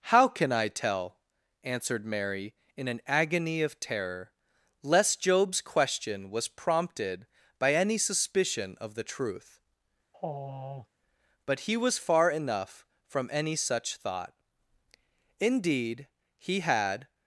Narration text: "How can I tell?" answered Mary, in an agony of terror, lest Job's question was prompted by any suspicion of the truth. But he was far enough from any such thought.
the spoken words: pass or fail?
fail